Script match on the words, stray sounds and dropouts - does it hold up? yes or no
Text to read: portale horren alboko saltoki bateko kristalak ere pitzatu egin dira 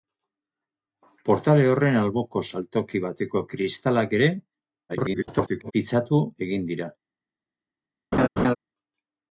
no